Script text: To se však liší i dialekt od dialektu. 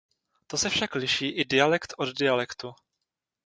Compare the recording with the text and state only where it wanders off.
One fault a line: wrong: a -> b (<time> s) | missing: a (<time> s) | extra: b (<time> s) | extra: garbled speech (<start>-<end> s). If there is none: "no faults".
no faults